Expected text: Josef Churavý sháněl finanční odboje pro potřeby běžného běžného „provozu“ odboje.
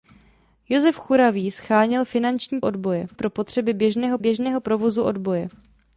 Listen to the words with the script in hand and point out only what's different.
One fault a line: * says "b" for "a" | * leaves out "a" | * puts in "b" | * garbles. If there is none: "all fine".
all fine